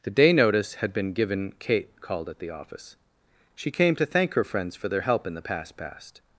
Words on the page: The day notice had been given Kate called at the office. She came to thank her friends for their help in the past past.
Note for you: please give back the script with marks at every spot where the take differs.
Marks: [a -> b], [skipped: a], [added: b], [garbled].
The day notice had been given Kate called at the office. She came to thank her friends for their help in the past past.